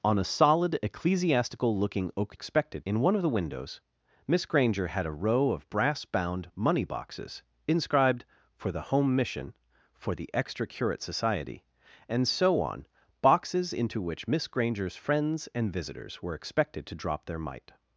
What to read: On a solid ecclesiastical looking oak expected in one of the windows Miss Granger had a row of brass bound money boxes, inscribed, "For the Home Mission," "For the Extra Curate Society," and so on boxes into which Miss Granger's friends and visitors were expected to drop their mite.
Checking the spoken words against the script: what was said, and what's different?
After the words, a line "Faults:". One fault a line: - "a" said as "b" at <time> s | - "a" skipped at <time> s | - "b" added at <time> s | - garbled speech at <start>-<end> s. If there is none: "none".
On a solid ecclesiastical looking oak expected in one of the windows Miss Granger had a row of brass bound money boxes, inscribed, "For the Home Mission," "For the Extra Curate Society," and so on boxes into which Miss Granger's friends and visitors were expected to drop their mite.
Faults:
none